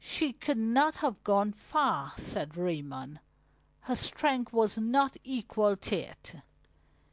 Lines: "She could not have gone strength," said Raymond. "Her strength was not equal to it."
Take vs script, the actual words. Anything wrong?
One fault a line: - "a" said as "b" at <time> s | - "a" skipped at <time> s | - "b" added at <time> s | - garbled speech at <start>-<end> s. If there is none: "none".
- "strength" said as "far" at 1.5 s